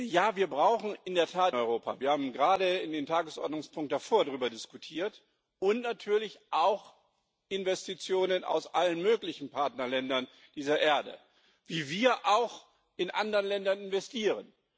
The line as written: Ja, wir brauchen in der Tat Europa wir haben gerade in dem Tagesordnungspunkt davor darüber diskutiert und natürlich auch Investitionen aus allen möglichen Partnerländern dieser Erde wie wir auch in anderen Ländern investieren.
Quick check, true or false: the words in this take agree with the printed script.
true